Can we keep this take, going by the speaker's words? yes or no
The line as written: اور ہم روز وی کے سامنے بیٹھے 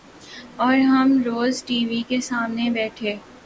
no